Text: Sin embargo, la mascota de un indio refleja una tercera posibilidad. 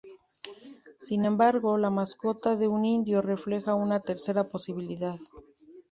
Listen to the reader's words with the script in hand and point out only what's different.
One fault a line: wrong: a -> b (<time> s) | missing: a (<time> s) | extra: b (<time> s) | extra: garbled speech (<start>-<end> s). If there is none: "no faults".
no faults